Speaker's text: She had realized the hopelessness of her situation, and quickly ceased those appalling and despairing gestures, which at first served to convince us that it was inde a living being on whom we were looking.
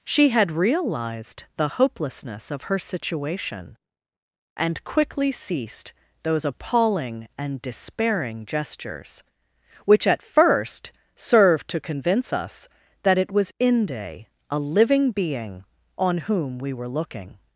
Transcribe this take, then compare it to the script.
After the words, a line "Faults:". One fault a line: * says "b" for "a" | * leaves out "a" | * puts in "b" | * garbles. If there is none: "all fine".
She had realized the hopelessness of her situation, and quickly ceased those appalling and despairing gestures, which at first served to convince us that it was inde a living being on whom we were looking.
Faults:
all fine